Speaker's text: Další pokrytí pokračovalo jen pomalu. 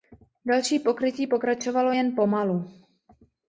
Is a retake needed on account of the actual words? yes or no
no